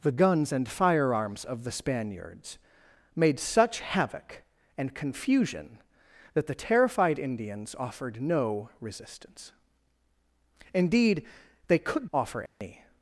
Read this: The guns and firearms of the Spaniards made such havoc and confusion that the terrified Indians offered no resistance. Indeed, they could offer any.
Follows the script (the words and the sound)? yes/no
no